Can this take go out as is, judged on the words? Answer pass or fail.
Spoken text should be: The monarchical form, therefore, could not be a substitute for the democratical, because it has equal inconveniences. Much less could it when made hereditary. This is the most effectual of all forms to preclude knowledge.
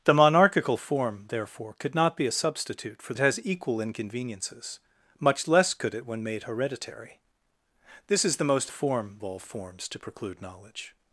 fail